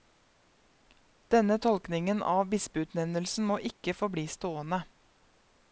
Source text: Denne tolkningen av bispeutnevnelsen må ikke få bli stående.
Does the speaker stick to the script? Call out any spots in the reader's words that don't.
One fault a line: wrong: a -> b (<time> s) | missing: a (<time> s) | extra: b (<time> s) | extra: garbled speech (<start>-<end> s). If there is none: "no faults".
no faults